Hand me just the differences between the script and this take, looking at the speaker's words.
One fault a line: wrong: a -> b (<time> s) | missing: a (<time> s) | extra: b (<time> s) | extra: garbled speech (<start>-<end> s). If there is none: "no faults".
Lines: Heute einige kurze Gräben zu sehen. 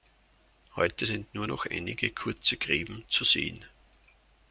extra: sind nur noch (1.0 s)